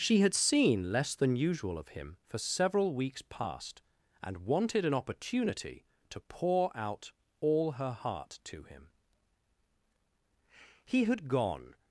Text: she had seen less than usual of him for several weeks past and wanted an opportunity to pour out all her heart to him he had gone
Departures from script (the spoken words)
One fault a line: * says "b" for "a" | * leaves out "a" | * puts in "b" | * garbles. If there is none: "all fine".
all fine